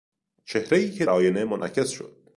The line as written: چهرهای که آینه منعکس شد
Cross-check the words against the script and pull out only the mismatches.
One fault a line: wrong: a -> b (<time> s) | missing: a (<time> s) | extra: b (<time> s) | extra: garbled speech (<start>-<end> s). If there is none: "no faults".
no faults